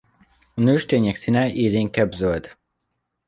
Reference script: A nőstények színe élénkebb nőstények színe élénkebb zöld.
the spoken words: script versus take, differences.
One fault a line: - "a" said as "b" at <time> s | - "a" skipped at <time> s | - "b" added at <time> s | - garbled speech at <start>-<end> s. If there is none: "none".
- "nőstények színe élénkebb" skipped at 2.1 s